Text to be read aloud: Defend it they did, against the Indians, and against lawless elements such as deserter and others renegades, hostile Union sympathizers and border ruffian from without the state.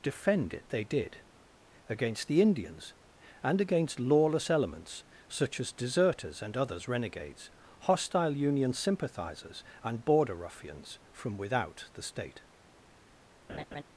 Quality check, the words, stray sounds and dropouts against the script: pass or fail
fail